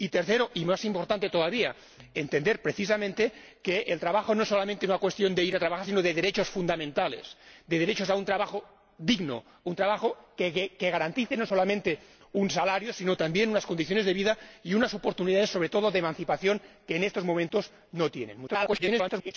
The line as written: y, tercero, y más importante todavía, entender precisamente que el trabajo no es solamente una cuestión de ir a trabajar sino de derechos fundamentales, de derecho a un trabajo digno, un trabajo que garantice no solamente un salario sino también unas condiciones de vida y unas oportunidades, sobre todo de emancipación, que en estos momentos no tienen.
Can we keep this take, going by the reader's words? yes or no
no